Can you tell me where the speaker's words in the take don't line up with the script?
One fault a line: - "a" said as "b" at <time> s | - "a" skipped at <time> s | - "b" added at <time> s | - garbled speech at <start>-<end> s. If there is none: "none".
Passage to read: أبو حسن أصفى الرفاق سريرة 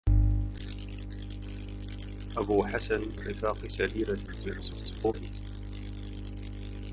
- "أصفى" skipped at 3.0 s
- garbled speech at 4.3-5.1 s